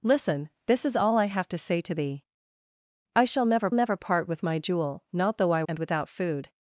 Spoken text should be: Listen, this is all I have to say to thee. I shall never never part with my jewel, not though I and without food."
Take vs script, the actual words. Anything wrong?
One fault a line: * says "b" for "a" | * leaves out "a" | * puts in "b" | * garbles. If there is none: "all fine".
all fine